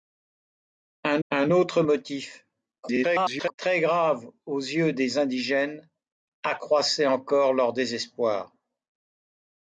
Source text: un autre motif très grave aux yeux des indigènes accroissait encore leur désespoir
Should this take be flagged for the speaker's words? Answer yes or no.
yes